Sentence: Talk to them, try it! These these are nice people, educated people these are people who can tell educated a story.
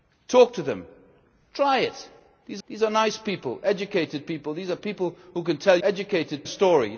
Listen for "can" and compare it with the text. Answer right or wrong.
right